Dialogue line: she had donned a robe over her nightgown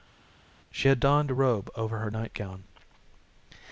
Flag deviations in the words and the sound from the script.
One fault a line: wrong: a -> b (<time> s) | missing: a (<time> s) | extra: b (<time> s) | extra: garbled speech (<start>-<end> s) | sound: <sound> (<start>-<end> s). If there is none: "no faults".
no faults